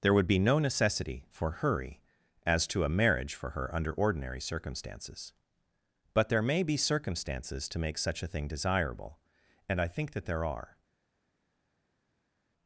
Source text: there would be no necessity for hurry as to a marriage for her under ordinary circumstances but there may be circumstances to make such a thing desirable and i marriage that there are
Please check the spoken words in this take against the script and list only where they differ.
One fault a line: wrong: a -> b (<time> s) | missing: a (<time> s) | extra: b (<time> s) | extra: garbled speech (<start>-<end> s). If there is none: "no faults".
wrong: marriage -> think (9.9 s)